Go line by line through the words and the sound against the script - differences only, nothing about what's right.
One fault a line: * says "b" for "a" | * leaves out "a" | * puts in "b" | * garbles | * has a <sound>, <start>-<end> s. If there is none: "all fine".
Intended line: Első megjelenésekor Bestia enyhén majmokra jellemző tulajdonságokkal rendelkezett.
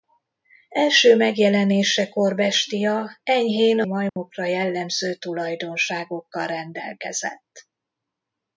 * has a dropout, 4.1-4.2 s